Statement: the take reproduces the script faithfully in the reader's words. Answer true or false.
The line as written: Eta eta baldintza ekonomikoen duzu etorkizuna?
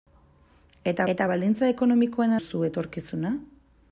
true